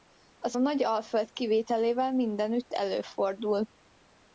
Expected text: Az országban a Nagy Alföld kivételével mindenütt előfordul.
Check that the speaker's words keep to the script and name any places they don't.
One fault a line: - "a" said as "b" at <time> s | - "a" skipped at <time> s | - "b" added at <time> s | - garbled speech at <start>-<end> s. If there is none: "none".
- "országban" skipped at 0.6 s